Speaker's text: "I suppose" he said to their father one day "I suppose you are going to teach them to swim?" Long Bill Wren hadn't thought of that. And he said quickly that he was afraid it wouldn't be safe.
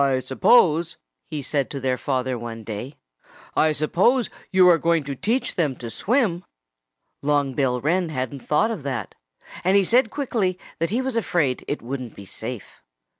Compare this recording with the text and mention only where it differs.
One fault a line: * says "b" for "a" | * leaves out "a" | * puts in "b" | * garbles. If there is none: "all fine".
all fine